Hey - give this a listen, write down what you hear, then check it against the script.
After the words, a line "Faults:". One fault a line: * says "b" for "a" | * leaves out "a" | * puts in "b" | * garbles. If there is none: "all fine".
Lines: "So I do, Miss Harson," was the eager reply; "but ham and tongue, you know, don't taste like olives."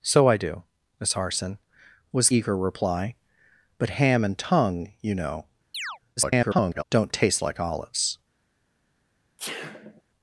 "So I do, Miss Harson," was eager reply; "but ham and tongue, you know, [garbled] don't taste like olives."
Faults:
* leaves out "the"
* garbles